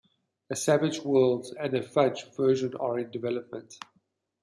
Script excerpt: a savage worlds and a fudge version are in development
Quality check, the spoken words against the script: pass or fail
pass